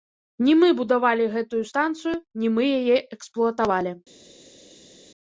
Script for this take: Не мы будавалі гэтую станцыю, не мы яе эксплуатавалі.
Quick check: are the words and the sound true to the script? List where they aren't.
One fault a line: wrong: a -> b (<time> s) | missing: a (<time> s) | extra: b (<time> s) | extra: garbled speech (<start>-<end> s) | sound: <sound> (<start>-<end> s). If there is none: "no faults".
no faults